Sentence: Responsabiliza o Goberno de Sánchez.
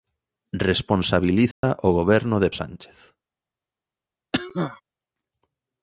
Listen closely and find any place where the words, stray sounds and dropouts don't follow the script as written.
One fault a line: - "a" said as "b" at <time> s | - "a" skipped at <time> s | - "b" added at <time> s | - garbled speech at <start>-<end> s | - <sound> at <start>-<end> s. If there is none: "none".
- dropout at 1.5-1.6 s
- cough at 4.3-4.8 s